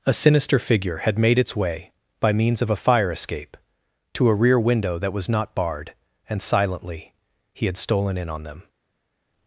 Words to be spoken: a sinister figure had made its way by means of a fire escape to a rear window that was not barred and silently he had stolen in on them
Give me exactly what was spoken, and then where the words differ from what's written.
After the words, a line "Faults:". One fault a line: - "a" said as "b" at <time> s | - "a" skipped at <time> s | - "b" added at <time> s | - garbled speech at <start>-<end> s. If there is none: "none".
a sinister figure had made its way by means of a fire escape to a rear window that was not barred and silently he had stolen in on them
Faults:
none